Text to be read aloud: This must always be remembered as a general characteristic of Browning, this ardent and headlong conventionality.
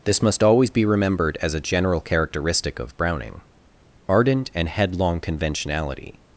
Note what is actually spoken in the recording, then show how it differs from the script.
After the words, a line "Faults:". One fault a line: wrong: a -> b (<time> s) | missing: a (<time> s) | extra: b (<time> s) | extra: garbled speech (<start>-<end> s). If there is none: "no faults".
This must always be remembered as a general characteristic of Browning, ardent and headlong conventionality.
Faults:
missing: this (3.4 s)